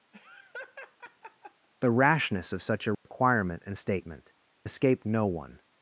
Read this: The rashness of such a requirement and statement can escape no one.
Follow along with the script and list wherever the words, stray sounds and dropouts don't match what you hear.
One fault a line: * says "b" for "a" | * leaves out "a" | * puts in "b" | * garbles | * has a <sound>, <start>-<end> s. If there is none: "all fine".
* has a laugh, 0.1-1.7 s
* has a dropout, 2.9-3.1 s
* leaves out "can"